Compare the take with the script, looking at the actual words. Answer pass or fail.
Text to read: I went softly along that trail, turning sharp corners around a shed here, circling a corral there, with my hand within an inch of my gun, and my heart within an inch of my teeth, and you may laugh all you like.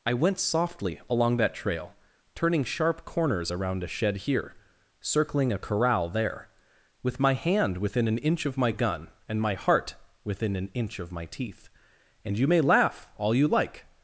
pass